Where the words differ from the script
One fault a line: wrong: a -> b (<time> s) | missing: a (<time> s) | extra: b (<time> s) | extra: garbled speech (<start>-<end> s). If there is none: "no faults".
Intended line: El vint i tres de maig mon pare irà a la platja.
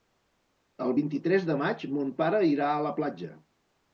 no faults